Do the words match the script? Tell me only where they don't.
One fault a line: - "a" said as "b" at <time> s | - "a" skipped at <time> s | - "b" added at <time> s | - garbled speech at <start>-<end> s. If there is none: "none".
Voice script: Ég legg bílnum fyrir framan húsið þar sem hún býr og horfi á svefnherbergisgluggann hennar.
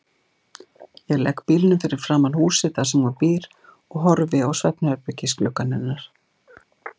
none